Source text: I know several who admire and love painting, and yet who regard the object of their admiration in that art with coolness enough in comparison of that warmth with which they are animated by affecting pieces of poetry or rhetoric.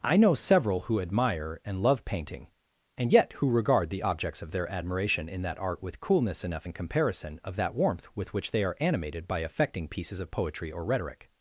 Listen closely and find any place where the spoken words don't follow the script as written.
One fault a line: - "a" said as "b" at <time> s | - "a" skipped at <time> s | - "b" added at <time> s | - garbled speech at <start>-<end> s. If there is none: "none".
- "object" said as "objects" at 4.0 s